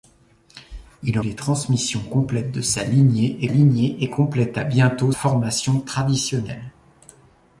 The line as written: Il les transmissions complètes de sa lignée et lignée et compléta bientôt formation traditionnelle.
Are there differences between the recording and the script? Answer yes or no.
no